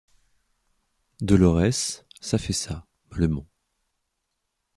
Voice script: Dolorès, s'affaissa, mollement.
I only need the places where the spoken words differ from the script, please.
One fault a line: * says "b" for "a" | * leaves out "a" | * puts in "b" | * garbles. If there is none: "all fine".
all fine